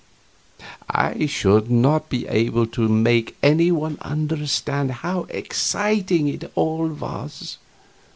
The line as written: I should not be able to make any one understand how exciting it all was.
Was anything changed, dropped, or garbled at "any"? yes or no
no